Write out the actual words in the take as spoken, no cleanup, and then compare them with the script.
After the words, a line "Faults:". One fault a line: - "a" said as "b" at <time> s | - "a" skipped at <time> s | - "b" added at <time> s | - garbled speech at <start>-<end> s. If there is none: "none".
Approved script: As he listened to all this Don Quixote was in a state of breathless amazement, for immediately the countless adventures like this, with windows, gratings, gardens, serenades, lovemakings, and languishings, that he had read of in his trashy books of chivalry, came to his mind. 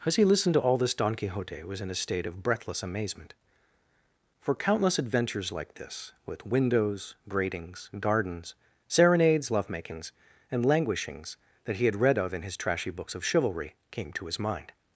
As he listened to all this Don Quixote was in a state of breathless amazement, for countless adventures like this, with windows, gratings, gardens, serenades, lovemakings, and languishings, that he had read of in his trashy books of chivalry, came to his mind.
Faults:
- "immediately the" skipped at 4.5 s